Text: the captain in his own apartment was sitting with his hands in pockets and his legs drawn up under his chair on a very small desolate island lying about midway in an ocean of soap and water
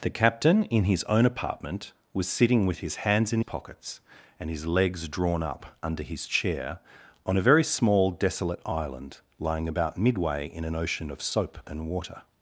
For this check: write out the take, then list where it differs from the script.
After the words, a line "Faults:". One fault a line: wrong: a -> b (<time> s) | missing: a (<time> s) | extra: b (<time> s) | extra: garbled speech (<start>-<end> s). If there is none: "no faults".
the captain in his own apartment was sitting with his hands in pockets and his legs drawn up under his chair on a very small desolate island lying about midway in an ocean of soap and water
Faults:
no faults